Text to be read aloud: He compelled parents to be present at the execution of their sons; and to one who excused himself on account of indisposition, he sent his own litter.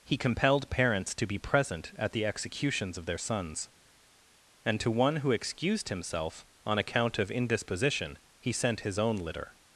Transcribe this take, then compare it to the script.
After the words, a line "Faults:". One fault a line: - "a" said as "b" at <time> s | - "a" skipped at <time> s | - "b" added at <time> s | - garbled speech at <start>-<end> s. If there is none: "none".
He compelled parents to be present at the executions of their sons; and to one who excused himself on account of indisposition, he sent his own litter.
Faults:
- "execution" said as "executions" at 2.2 s